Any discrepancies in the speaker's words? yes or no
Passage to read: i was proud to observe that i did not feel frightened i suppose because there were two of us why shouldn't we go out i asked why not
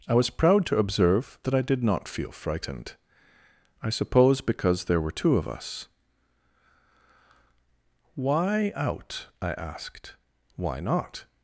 yes